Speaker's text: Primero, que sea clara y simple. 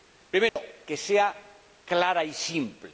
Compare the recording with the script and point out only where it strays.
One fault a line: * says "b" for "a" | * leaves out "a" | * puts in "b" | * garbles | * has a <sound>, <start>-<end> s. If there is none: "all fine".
* has a dropout, 0.5-0.6 s